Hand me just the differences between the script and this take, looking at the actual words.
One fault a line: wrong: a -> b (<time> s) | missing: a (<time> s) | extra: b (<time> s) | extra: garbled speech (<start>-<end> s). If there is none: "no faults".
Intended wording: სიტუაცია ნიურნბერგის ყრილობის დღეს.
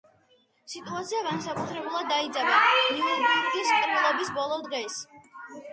extra: განსაკუთრებულად დაიძაბა (1.3 s)
extra: ბოლო (4.4 s)